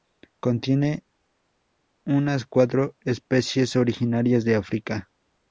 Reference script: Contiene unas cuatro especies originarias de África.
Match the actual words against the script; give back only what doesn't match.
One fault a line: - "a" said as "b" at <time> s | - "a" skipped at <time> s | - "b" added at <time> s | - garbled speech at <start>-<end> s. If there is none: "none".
none